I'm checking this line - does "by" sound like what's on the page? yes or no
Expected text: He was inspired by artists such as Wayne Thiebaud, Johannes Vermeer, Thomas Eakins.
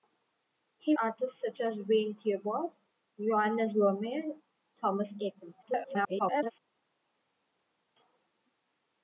no